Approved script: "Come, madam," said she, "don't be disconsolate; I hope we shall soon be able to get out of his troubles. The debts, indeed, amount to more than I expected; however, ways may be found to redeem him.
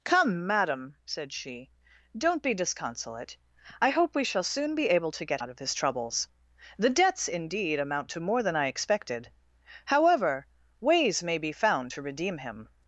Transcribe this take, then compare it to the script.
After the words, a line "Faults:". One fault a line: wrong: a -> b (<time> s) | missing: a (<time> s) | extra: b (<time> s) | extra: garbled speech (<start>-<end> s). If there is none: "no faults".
"Come, madam," said she, "don't be disconsolate; I hope we shall soon be able to get out of his troubles. The debts, indeed, amount to more than I expected; however, ways may be found to redeem him.
Faults:
no faults